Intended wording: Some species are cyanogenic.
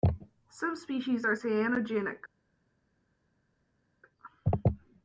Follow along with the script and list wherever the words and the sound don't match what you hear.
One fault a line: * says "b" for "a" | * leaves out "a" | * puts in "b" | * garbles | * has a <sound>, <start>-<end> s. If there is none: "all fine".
all fine